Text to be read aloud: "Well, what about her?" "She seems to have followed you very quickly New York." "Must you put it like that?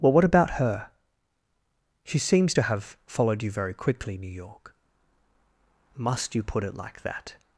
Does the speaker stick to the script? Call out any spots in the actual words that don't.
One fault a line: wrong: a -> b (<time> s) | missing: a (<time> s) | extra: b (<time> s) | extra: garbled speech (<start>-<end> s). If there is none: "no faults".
no faults